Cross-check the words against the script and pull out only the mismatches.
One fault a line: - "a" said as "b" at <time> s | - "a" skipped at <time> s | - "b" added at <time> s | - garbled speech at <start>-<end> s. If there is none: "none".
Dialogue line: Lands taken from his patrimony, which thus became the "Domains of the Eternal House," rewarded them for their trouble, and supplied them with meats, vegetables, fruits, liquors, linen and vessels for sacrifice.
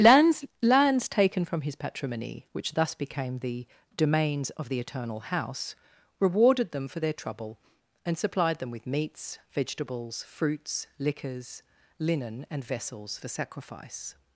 - "lands" added at 0.6 s